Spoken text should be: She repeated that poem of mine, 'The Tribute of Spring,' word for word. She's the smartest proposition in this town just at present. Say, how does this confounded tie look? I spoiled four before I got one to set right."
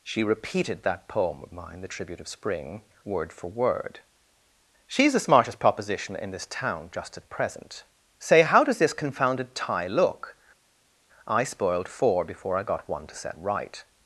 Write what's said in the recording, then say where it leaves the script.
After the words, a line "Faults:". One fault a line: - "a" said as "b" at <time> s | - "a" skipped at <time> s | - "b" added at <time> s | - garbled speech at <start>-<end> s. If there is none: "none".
She repeated that poem of mine, 'The Tribute of Spring,' word for word. She's the smartest proposition in this town just at present. Say, how does this confounded tie look? I spoiled four before I got one to set right."
Faults:
none